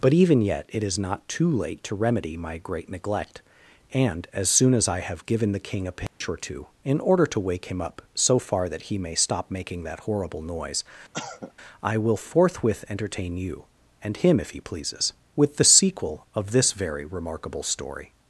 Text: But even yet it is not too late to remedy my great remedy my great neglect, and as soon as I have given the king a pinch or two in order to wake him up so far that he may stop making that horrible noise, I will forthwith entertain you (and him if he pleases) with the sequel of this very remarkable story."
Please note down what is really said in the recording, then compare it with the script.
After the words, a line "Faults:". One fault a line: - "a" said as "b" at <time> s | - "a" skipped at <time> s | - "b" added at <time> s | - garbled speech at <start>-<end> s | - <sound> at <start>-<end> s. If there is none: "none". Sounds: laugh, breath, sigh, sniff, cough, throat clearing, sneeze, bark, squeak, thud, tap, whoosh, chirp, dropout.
But even yet it is not too late to remedy my great neglect, and as soon as I have given the king a pinch or two in order to wake him up so far that he may stop making that horrible noise, I will forthwith entertain you (and him if he pleases) with the sequel of this very remarkable story."
Faults:
- "remedy my great" skipped at 2.9 s
- dropout at 6.1-6.2 s
- cough at 11.1-11.5 s